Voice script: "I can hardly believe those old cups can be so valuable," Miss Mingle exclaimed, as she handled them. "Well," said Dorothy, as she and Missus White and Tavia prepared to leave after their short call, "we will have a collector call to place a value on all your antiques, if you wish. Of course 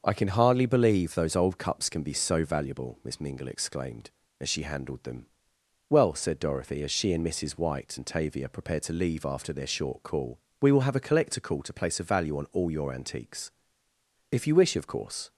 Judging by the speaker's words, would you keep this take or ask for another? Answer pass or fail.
pass